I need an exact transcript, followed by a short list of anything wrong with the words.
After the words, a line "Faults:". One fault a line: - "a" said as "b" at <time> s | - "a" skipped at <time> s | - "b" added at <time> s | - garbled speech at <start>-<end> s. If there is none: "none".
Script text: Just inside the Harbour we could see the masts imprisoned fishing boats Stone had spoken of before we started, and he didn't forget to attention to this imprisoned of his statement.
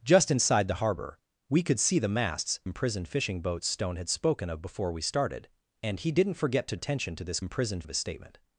Just inside the Harbour we could see the masts imprisoned fishing boats Stone had spoken of before we started, and he didn't forget to attention to this imprisoned of his statement.
Faults:
none